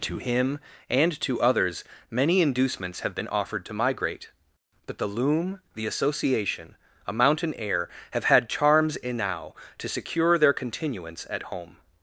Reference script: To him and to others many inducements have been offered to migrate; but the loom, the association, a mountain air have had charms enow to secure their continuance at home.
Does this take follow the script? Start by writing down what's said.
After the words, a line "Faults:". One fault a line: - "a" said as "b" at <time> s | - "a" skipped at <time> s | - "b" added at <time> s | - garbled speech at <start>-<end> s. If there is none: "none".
To him and to others many inducements have been offered to migrate; but the loom, the association, a mountain air have had charms enow to secure their continuance at home.
Faults:
none